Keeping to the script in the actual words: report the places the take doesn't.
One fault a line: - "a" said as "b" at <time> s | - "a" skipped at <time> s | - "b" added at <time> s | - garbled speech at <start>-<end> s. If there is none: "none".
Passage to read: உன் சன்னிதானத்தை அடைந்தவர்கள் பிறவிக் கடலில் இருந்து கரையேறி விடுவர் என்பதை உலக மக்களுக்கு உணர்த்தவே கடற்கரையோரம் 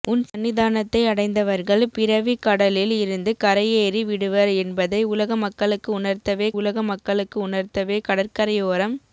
- "உலக மக்களுக்கு உணர்த்தவே" added at 6.6 s